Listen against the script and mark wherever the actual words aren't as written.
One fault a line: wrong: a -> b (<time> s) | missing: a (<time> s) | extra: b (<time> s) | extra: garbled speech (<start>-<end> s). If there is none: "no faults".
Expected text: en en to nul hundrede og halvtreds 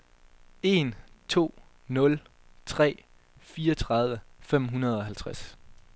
missing: en (0.9 s)
extra: tre fireogtredive fem (2.6 s)